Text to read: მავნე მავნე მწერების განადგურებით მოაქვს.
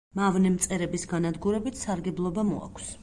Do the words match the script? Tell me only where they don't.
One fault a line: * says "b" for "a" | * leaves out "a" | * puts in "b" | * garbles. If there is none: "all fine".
* leaves out "მავნე"
* puts in "სარგებლობა"